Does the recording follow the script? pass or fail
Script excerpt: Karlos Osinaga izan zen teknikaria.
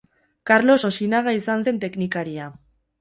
pass